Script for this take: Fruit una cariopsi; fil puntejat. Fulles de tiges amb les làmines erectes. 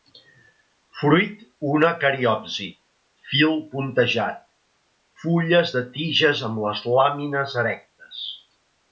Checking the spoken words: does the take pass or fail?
pass